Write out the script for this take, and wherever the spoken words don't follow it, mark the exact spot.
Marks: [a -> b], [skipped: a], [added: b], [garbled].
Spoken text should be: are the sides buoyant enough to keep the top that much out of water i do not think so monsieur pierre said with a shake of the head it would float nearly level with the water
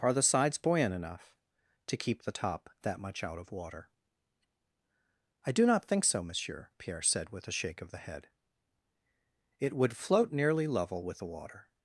are the sides buoyant enough to keep the top that much out of water i do not think so monsieur pierre said with a shake of the head it would float nearly level with the water